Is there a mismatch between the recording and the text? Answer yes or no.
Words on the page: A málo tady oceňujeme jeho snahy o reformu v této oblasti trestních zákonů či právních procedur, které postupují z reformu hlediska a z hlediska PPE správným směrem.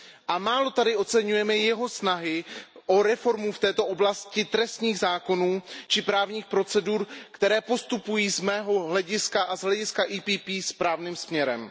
yes